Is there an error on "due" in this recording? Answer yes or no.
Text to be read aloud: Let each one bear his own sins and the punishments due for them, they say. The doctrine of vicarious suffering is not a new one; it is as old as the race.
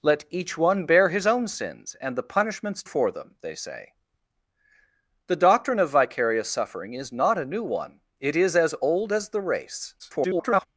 yes